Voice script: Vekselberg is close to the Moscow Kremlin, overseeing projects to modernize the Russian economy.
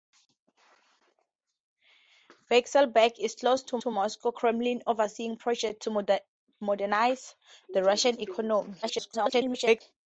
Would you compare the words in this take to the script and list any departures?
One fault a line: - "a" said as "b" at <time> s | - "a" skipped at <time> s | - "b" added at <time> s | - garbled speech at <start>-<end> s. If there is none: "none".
- "to" added at 3.8 s
- garbled speech at 8.8-9.8 s